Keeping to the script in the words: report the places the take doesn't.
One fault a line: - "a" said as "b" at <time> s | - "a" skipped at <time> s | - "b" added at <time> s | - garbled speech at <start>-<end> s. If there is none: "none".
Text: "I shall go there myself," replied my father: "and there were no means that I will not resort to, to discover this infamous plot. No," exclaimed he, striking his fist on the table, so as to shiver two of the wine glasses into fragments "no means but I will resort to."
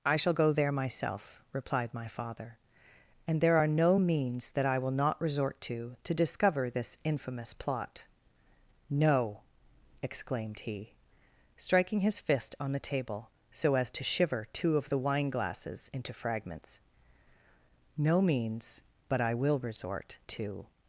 - "were" said as "are" at 3.6 s